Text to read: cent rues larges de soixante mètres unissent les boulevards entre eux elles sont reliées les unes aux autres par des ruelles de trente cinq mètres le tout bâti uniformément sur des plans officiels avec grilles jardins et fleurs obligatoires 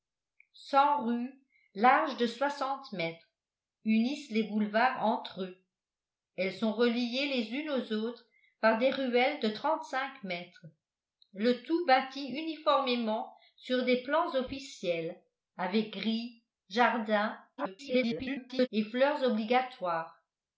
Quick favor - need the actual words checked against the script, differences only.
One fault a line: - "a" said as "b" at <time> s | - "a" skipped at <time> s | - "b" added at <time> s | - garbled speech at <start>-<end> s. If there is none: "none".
- garbled speech at 17.6-18.7 s